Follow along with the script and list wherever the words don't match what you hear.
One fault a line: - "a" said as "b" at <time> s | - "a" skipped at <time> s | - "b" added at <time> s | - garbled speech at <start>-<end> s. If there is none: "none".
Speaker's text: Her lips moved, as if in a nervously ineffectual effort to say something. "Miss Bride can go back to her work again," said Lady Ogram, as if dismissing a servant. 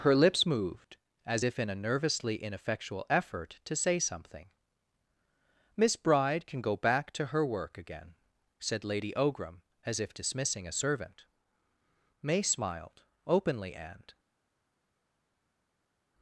- "May smiled openly and" added at 12.2 s